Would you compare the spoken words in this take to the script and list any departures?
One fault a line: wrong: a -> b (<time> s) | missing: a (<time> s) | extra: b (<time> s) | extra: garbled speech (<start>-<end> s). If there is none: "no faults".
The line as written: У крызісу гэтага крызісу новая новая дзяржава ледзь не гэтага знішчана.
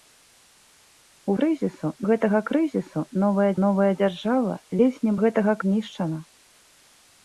no faults